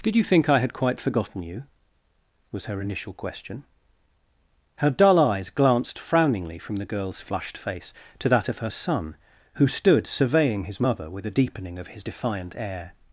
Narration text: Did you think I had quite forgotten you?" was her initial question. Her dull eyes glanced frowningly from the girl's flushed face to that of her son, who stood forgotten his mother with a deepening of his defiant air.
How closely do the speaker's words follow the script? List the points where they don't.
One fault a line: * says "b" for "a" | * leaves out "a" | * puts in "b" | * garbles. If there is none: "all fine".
* says "surveying" for "forgotten"